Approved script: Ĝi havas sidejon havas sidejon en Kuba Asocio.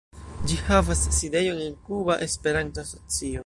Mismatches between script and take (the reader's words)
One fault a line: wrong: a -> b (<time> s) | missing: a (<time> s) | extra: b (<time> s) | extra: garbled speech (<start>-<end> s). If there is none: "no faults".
missing: havas sidejon (1.6 s)
extra: Esperanto (2.3 s)